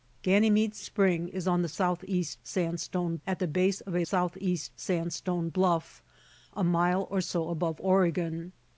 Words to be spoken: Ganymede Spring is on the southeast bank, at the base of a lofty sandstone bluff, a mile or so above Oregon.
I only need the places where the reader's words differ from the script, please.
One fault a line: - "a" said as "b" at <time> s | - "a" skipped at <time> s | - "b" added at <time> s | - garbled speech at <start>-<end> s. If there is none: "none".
- "bank" said as "sandstone" at 2.4 s
- "lofty" said as "southeast" at 4.0 s